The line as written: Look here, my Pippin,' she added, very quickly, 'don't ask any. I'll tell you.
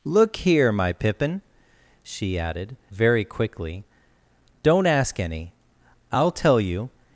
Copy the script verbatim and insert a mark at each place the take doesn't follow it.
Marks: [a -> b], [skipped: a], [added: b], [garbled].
Look here, my Pippin,' she added, very quickly, 'don't ask any. I'll tell you.